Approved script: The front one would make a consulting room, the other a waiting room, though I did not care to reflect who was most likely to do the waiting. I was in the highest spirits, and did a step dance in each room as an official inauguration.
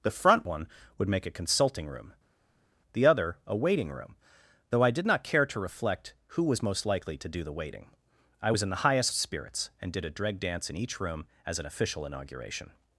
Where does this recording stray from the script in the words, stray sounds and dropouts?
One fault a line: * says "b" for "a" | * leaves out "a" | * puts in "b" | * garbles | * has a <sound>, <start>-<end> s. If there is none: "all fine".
* says "dreg" for "step"